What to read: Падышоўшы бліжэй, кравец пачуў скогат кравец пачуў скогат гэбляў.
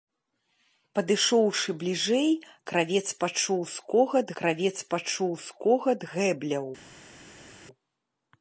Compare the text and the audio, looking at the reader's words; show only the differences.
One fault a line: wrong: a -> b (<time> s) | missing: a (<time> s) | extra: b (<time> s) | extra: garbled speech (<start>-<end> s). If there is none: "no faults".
no faults